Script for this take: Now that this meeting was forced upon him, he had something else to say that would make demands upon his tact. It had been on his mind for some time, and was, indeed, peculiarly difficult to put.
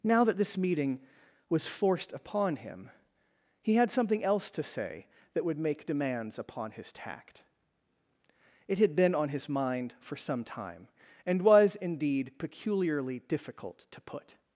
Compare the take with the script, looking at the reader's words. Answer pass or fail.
pass